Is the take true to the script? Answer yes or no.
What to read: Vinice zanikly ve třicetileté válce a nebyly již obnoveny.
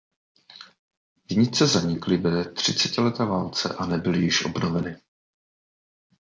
yes